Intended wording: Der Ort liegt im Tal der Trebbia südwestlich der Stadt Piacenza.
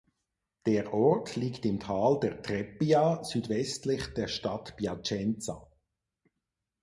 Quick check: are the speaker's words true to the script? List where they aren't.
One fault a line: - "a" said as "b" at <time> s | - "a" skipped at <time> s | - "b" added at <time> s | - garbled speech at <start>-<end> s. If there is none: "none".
none